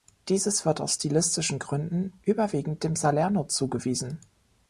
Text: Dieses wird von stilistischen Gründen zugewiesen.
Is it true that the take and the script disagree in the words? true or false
true